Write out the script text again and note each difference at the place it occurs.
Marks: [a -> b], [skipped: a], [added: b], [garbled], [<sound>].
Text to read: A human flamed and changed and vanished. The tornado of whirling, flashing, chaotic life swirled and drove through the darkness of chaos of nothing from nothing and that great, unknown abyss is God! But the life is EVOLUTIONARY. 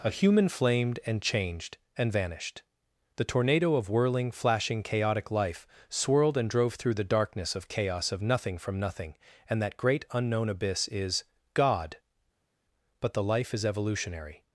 A human flamed and changed and vanished. The tornado of whirling, flashing, chaotic life swirled and drove through the darkness of chaos of nothing from nothing and that great, unknown abyss is God! But the life is EVOLUTIONARY.